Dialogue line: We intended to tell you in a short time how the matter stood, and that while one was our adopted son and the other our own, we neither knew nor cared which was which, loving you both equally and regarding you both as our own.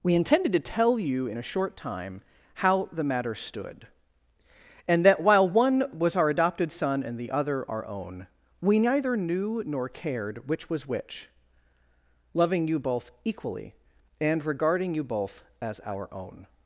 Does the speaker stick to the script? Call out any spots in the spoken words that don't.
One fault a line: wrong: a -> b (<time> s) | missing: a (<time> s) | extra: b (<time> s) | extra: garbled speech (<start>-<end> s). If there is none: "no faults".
no faults